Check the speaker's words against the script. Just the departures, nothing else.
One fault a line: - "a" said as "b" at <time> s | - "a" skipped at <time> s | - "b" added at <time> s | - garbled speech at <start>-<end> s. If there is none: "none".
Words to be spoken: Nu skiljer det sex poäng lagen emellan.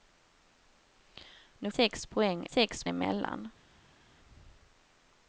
- "skiljer det" skipped at 1.7 s
- "lagen" said as "sex" at 2.4 s